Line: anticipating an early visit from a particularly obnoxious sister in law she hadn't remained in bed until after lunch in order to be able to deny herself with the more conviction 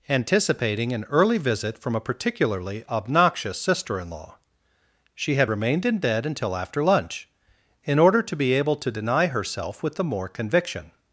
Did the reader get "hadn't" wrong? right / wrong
wrong